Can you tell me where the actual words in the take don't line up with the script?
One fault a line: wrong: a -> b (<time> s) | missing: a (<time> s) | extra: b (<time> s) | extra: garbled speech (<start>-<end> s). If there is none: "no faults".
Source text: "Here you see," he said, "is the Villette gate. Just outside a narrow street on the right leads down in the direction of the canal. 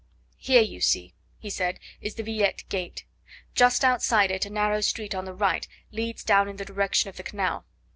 extra: it (4.3 s)